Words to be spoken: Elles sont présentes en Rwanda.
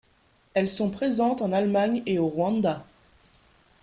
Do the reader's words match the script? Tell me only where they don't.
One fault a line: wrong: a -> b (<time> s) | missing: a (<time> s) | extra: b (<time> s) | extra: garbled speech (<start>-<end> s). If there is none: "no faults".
extra: Allemagne et au (1.5 s)